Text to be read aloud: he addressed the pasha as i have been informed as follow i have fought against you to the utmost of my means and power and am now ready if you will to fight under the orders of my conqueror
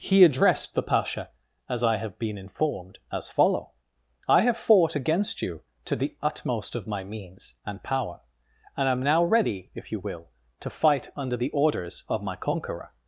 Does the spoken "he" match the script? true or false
true